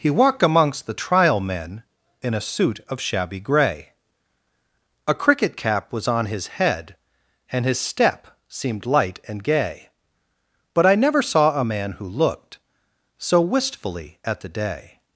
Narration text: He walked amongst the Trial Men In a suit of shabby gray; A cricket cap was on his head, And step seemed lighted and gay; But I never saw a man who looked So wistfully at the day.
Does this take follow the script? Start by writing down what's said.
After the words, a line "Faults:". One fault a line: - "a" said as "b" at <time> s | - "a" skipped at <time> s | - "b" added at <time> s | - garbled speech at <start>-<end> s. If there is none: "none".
He walked amongst the Trial Men In a suit of shabby gray; A cricket cap was on his head, And his step seemed light and gay; But I never saw a man who looked So wistfully at the day.
Faults:
- "his" added at 7.7 s
- "lighted" said as "light" at 8.9 s